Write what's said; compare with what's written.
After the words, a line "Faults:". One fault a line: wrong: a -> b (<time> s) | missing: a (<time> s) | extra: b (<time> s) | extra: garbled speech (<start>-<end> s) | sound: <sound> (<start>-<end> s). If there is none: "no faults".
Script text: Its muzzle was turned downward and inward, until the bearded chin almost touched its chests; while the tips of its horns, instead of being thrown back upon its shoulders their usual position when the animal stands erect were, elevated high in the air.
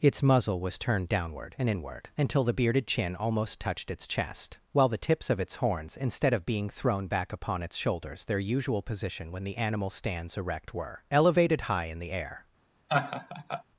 Its muzzle was turned downward and inward, until the bearded chin almost touched its chest; while the tips of its horns, instead of being thrown back upon its shoulders their usual position when the animal stands erect were, elevated high in the air.
Faults:
wrong: chests -> chest (4.1 s)
sound: laugh (12.9-13.6 s)